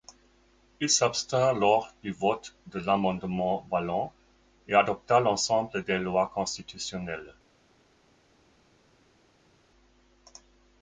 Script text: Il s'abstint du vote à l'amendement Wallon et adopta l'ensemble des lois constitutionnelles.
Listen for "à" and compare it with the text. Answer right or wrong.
wrong